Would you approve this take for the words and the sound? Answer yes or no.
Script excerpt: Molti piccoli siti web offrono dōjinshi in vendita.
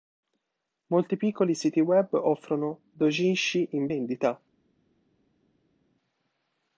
yes